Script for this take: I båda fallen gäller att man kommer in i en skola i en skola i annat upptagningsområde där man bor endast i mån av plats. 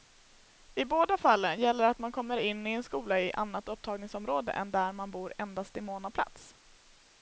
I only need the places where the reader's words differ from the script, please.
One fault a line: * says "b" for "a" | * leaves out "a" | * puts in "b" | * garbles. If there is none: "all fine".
* leaves out "en skola i"
* puts in "än"